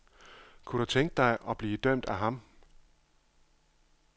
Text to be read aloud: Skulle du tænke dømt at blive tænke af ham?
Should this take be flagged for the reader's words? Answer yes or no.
yes